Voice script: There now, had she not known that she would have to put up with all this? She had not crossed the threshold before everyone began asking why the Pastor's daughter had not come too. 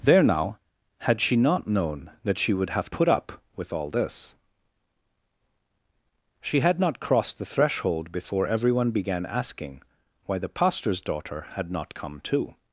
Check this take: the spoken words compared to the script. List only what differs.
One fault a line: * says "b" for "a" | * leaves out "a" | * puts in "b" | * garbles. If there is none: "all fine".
* leaves out "to"